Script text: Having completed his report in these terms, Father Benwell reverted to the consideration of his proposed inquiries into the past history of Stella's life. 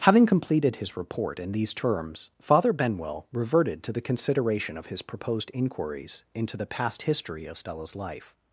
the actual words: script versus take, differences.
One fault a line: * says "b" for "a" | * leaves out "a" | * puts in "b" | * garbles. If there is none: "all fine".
all fine